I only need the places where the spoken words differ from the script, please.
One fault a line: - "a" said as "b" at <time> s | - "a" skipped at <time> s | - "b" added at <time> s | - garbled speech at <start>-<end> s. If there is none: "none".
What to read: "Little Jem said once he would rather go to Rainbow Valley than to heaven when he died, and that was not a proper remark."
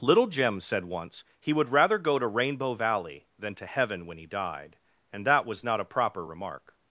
none